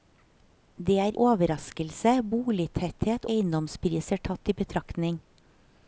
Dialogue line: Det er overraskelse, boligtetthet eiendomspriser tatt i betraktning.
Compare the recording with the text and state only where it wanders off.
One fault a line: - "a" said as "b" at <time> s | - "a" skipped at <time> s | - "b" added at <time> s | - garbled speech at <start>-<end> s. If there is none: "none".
none